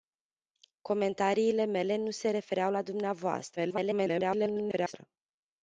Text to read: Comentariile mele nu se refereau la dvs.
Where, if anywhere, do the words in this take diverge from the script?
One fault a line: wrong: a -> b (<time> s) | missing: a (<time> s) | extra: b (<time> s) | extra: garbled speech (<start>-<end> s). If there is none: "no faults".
extra: garbled speech (3.6-4.9 s)